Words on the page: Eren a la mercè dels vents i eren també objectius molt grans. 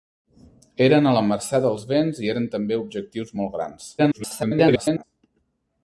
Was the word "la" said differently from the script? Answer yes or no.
no